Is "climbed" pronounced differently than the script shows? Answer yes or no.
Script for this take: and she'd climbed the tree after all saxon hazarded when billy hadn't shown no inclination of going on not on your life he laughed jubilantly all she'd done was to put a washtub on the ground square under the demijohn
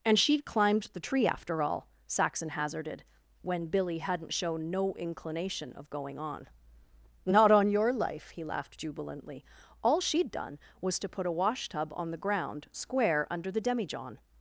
no